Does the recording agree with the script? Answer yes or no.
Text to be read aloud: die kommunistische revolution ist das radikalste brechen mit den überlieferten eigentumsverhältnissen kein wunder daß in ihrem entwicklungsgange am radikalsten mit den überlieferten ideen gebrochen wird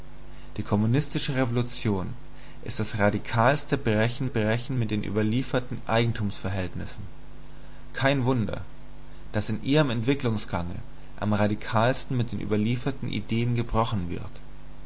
no